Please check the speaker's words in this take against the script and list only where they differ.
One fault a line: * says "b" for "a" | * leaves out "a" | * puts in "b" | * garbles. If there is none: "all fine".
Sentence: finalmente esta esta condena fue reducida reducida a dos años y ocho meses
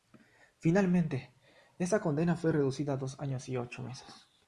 * leaves out "esta"
* leaves out "reducida"